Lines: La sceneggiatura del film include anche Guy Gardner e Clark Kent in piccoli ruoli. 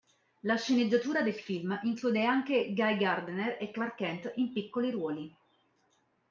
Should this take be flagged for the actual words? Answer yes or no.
no